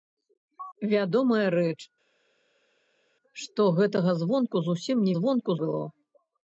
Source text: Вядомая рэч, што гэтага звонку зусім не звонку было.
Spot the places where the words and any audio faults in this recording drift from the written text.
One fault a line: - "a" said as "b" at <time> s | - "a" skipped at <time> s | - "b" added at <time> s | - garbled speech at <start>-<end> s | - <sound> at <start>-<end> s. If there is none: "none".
none